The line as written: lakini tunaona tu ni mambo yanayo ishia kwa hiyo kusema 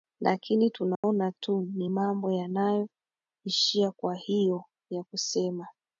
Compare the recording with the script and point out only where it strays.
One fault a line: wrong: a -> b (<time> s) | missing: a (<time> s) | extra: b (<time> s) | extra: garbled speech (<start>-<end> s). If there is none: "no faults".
extra: ya (4.9 s)